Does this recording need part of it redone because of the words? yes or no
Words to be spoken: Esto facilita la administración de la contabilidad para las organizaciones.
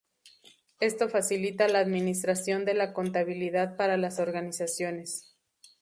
no